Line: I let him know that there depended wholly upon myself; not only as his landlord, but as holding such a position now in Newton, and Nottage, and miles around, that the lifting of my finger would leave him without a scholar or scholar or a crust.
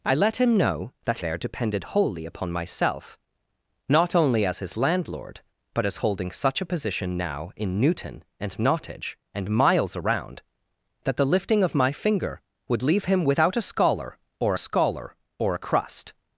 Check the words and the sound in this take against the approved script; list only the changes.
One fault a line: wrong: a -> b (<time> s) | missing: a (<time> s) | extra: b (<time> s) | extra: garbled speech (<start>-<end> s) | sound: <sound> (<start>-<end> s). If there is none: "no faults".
no faults